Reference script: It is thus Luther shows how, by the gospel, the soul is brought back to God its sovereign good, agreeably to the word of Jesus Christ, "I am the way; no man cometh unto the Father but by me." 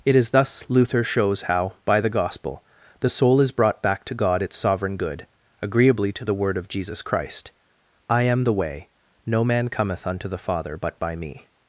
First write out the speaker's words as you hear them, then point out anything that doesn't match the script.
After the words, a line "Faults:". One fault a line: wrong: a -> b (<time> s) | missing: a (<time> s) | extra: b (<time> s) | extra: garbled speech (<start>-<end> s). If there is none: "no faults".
It is thus Luther shows how, by the gospel, the soul is brought back to God its sovereign good, agreeably to the word of Jesus Christ, "I am the way; no man cometh unto the Father but by me."
Faults:
no faults